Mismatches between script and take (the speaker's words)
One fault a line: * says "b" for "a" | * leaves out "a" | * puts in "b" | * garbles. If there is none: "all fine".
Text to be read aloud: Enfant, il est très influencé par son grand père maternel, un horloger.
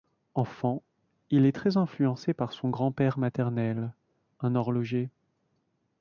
all fine